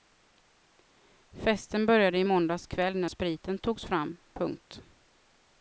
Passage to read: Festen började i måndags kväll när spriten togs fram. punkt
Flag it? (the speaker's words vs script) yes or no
no